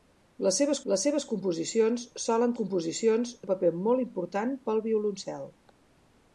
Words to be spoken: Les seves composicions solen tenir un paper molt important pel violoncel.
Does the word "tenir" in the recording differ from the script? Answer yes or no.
yes